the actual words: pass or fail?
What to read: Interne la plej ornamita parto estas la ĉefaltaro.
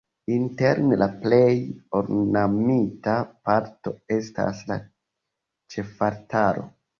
pass